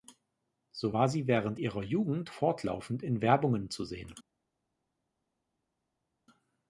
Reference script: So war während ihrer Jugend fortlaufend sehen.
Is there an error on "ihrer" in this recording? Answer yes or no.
no